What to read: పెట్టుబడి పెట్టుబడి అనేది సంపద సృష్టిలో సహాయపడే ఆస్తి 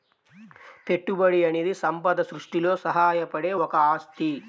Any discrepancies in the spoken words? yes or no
yes